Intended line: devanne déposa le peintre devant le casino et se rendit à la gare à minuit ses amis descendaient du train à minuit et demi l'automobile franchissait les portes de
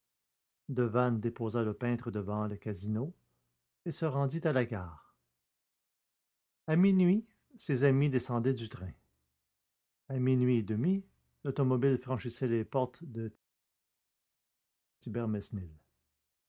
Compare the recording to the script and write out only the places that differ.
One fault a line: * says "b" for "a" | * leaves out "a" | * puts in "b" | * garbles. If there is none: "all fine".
all fine